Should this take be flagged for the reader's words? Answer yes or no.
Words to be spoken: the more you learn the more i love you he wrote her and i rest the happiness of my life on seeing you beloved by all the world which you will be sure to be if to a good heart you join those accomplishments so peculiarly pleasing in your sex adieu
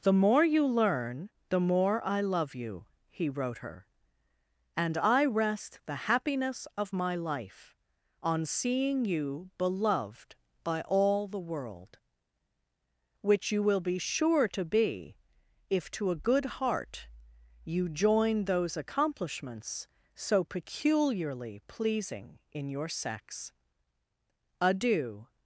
no